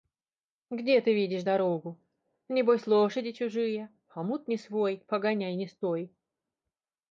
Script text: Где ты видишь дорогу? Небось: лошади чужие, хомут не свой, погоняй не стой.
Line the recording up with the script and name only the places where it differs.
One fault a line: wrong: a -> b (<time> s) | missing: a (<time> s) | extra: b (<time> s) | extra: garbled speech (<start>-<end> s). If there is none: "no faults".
no faults